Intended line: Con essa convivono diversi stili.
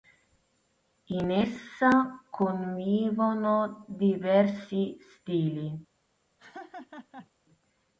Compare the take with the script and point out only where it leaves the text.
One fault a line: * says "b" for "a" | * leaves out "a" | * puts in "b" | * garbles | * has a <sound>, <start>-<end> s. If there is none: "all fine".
* says "In" for "Con"
* has a laugh, 6.4-7.3 s